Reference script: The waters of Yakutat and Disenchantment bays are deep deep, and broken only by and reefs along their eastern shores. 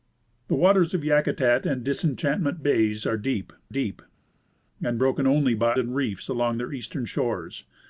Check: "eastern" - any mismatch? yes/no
no